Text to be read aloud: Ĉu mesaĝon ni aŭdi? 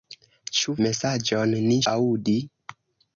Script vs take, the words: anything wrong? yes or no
no